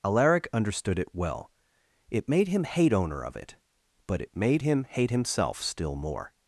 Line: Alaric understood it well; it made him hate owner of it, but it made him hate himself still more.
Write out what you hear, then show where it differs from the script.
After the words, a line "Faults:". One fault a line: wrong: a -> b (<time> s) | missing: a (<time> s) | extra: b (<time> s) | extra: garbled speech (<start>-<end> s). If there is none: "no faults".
Alaric understood it well; it made him hate owner of it, but it made him hate himself still more.
Faults:
no faults